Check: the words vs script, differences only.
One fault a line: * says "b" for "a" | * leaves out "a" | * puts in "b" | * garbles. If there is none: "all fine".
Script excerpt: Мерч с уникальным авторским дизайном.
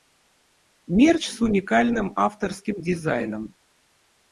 all fine